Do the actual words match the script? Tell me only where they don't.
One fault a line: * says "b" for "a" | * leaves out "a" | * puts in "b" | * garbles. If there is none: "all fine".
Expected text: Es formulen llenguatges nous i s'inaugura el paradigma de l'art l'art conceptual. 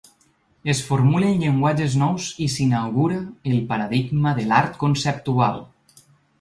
* leaves out "l'art"